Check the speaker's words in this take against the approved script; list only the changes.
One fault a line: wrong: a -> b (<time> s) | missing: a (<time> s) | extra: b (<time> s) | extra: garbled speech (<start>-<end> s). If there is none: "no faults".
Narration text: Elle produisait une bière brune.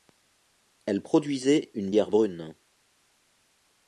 no faults